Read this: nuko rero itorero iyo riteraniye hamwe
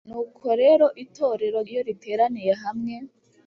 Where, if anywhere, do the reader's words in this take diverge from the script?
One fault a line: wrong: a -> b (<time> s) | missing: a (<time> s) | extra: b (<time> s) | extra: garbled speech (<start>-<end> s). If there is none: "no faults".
no faults